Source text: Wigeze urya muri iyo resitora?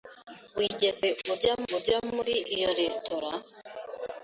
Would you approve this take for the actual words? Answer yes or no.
no